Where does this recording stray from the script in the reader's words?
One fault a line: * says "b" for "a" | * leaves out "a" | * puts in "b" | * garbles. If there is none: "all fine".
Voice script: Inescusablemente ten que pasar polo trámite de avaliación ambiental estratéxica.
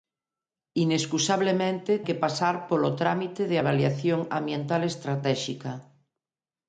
* leaves out "ten"